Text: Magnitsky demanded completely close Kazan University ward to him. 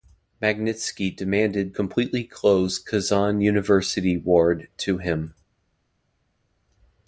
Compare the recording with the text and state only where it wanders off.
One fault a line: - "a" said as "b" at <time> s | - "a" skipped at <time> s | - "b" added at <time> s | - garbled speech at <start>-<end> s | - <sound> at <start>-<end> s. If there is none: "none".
none